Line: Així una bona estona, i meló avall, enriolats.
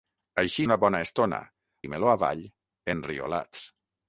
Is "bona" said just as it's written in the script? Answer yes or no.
yes